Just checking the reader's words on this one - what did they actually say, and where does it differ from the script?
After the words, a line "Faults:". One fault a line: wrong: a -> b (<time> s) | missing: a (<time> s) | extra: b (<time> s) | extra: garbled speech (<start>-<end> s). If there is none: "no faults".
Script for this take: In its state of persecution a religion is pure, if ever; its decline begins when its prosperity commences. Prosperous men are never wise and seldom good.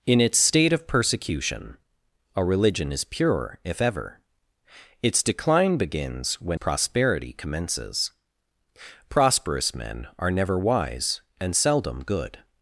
In its state of persecution a religion is pure, if ever; its decline begins when prosperity commences. Prosperous men are never wise and seldom good.
Faults:
missing: its (6.6 s)